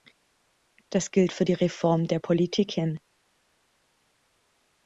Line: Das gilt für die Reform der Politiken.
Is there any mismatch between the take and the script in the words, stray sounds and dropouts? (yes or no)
no